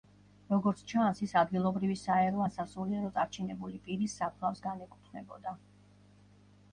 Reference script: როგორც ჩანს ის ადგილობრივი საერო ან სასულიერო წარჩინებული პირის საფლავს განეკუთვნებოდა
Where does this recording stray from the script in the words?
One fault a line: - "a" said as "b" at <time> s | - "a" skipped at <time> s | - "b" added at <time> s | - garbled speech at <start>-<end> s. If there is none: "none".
none